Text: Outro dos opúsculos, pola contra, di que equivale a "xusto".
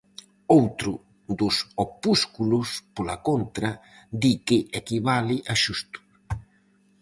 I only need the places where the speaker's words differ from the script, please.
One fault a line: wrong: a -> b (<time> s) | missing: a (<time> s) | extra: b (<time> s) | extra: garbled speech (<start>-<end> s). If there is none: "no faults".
no faults